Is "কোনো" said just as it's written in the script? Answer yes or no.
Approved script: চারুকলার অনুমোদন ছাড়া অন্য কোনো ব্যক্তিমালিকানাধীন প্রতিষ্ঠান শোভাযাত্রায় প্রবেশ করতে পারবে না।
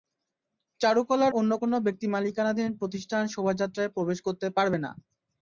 yes